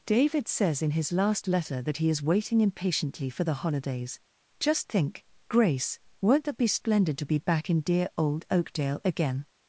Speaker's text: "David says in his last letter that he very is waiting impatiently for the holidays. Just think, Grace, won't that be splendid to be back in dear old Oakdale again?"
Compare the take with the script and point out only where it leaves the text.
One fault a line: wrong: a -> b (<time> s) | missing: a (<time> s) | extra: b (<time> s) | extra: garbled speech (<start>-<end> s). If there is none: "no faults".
missing: very (2.1 s)